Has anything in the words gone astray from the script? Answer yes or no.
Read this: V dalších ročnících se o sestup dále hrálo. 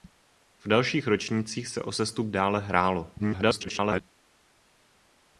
yes